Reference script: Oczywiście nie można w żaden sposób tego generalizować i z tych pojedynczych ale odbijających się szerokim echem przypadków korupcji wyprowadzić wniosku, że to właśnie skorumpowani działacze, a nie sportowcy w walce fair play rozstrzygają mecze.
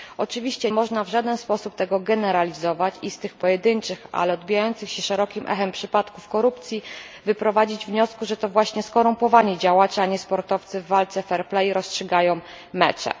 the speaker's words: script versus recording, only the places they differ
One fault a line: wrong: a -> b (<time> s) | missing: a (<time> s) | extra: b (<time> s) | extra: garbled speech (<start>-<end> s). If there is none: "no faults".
missing: nie (0.7 s)